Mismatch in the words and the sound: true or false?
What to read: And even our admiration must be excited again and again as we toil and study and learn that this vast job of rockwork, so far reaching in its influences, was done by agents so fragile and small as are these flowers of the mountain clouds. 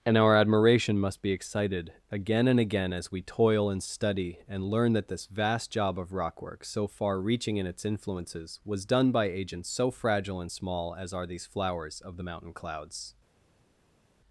true